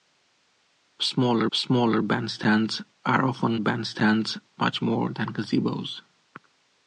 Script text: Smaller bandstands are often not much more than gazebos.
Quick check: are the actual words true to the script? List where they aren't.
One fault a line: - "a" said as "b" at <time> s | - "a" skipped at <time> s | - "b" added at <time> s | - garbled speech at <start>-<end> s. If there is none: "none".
- "smaller" added at 1.5 s
- "not" said as "bandstands" at 3.6 s